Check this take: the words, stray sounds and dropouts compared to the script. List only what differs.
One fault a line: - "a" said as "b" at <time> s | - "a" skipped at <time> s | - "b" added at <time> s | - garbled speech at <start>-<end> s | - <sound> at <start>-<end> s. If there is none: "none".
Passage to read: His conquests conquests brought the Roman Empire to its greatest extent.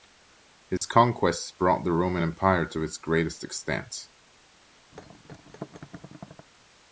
- dropout at 0.8-0.8 s
- "conquests" skipped at 1.5 s
- thud at 4.9-6.5 s